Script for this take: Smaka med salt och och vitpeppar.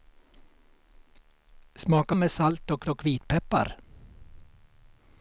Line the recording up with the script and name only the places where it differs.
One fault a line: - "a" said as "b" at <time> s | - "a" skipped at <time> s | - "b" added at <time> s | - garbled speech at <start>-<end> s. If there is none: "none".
none